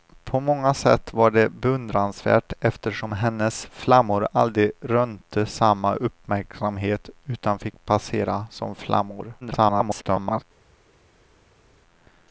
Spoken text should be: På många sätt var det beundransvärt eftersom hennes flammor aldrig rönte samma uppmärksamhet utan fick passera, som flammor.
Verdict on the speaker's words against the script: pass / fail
fail